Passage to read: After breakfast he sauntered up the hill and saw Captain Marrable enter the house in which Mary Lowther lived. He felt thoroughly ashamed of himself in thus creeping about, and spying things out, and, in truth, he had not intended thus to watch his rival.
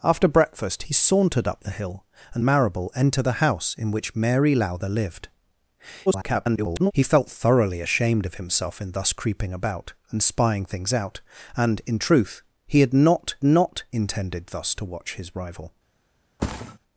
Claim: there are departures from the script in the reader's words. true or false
true